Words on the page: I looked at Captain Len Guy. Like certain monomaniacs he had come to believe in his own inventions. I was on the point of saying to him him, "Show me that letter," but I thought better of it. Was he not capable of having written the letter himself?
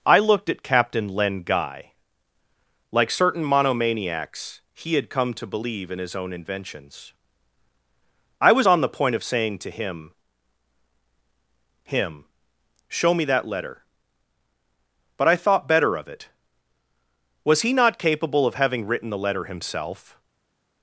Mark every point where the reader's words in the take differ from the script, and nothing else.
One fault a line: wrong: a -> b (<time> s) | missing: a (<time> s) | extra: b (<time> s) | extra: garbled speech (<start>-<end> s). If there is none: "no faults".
no faults